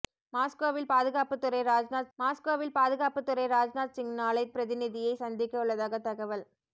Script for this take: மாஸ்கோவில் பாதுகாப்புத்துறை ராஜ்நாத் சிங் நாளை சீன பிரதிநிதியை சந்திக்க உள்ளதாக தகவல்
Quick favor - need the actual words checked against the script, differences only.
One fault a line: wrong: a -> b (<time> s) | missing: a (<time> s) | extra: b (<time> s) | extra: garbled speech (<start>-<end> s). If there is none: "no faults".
extra: மாஸ்கோவில் பாதுகாப்புத்துறை ராஜ்நாத் (2.2 s)
missing: சீன (4.4 s)